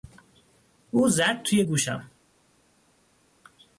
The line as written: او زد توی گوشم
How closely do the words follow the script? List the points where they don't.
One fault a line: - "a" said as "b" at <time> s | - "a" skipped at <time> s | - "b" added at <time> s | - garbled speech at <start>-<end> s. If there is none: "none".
none